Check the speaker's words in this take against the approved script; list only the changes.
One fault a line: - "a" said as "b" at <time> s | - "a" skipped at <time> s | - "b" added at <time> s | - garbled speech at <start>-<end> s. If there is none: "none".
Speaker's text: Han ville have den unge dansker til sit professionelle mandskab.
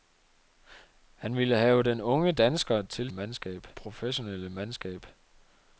- "sit" said as "mandskab" at 3.1 s